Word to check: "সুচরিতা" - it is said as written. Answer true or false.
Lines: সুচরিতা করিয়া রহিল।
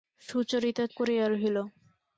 true